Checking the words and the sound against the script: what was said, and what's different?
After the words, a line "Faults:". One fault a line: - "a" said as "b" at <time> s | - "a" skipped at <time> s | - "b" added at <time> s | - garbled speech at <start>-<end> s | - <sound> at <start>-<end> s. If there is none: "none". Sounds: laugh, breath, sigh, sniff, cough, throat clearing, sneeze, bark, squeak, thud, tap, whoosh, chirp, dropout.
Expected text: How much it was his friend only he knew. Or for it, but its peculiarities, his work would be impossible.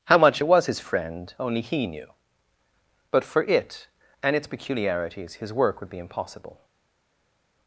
How much it was his friend only he knew. But for it, and its peculiarities, his work would be impossible.
Faults:
- "Or" said as "But" at 3.1 s
- "but" said as "and" at 4.2 s